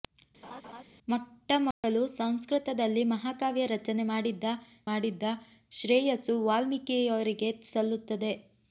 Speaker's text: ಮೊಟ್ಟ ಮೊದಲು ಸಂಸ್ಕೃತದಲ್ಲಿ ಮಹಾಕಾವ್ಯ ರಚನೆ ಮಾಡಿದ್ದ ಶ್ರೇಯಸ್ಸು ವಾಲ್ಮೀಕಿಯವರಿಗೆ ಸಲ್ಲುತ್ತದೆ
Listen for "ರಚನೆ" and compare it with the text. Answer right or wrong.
right